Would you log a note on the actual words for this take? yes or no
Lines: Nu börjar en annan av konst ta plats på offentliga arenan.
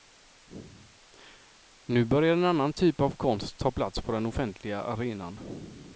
yes